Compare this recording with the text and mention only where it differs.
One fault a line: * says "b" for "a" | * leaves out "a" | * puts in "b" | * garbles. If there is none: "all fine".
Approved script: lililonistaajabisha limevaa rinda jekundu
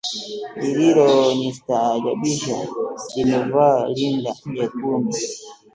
all fine